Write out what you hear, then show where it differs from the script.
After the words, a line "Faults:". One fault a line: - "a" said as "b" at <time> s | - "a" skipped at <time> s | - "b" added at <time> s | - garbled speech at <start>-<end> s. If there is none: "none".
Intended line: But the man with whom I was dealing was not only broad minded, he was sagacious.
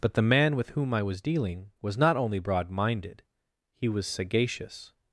But the man with whom I was dealing was not only broad minded, he was sagacious.
Faults:
none